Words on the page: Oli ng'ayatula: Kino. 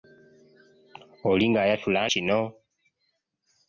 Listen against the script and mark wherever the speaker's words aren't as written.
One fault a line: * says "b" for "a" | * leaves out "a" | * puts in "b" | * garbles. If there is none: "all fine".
all fine